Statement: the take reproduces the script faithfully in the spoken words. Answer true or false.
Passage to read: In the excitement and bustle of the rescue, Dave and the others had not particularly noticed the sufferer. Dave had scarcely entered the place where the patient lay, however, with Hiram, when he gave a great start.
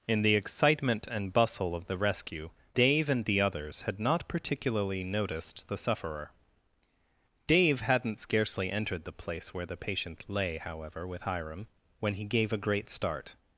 false